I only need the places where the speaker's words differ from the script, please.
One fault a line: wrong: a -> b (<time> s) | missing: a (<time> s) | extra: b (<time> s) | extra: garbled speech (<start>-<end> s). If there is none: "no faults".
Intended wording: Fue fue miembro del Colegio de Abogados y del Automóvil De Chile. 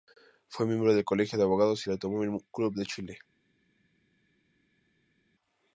missing: fue (0.7 s)
extra: Club (2.5 s)